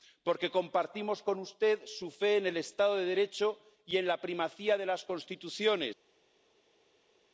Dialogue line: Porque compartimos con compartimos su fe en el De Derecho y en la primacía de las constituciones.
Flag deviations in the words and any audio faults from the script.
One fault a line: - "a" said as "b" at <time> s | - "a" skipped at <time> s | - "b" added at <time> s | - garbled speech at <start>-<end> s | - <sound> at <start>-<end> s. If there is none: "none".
- "compartimos" said as "usted" at 1.4 s
- "Estado" added at 2.6 s